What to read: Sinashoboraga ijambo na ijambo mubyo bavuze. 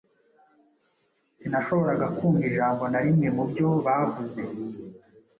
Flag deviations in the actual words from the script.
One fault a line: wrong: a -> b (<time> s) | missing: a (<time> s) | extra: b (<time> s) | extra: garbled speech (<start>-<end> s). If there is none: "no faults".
extra: kumva (2.2 s)
wrong: ijambo -> rimwe (3.0 s)